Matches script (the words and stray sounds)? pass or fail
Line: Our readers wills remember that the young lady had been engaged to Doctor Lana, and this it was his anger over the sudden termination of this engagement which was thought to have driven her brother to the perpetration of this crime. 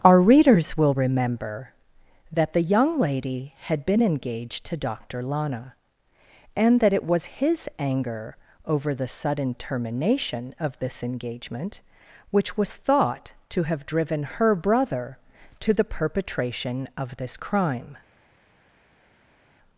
fail